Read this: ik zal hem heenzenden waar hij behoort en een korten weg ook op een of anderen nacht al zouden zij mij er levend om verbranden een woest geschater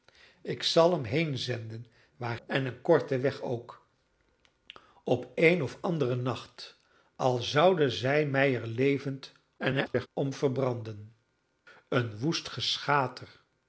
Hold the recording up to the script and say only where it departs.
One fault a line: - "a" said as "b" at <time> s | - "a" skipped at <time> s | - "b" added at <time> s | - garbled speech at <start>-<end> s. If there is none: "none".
- "hij behoort" skipped at 2.4 s
- garbled speech at 9.6-10.1 s